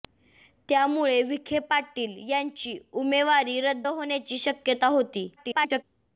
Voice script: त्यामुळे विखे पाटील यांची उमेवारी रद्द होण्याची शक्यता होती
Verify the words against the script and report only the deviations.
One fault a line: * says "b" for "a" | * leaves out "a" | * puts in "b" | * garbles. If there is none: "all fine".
* garbles